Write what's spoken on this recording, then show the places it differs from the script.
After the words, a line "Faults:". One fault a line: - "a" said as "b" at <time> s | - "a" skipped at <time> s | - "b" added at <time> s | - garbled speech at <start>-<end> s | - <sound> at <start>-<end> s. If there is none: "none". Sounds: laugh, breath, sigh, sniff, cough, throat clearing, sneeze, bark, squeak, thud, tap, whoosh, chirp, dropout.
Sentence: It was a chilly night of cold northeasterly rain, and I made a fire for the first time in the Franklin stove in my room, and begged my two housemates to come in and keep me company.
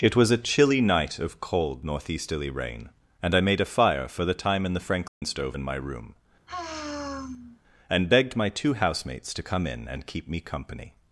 It was a chilly night of cold northeasterly rain, and I made a fire for the time in the Franklin stove in my room, and begged my two housemates to come in and keep me company.
Faults:
- "first" skipped at 4.3 s
- dropout at 5.1-5.2 s
- sigh at 6.5-7.6 s